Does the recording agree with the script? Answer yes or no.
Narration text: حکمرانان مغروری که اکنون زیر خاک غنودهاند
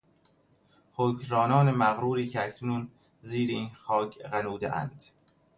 no